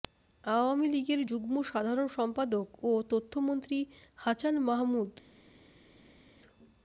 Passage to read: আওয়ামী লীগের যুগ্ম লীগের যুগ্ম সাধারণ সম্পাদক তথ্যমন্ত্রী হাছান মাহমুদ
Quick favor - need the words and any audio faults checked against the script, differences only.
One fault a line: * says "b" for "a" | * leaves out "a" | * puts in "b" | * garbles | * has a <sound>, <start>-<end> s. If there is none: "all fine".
* leaves out "লীগের যুগ্ম"
* puts in "ও"